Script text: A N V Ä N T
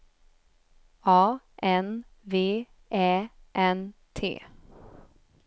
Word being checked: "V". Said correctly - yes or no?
yes